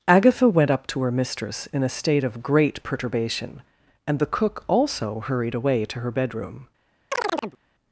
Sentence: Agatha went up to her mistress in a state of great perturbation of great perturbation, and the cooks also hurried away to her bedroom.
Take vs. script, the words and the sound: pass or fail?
fail